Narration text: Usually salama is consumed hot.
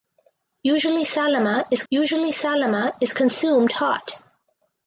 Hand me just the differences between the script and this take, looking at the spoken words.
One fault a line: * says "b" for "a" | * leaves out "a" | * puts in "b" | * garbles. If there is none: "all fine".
* puts in "usually salama is"